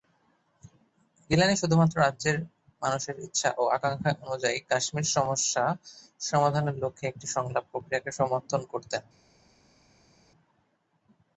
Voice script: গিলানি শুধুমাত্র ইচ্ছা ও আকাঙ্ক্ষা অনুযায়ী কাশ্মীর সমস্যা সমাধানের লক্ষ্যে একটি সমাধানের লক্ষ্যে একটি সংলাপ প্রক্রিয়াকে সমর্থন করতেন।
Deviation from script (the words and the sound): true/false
true